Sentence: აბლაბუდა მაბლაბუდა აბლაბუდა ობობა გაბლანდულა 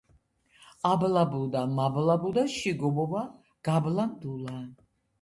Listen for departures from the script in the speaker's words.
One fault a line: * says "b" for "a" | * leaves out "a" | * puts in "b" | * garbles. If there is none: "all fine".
* says "შიგ" for "აბლაბუდა"